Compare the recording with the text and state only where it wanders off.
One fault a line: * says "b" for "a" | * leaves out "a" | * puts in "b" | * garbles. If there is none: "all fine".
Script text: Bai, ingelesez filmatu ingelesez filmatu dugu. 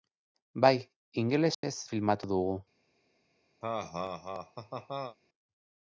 * leaves out "ingelesez filmatu"